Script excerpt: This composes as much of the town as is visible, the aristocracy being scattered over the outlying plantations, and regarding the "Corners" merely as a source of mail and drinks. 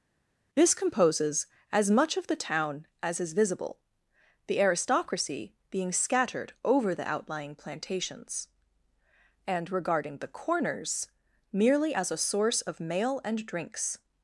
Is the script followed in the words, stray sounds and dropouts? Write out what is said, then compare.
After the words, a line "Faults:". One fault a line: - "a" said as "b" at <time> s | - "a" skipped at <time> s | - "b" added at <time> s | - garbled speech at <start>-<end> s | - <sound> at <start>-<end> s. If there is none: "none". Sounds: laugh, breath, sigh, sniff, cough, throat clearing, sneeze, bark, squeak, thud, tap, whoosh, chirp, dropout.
This composes as much of the town as is visible, the aristocracy being scattered over the outlying plantations, and regarding the "Corners" merely as a source of mail and drinks.
Faults:
none